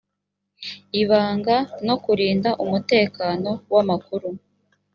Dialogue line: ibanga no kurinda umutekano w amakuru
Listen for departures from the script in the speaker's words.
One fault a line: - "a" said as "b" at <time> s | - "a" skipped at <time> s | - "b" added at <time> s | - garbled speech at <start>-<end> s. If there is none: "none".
none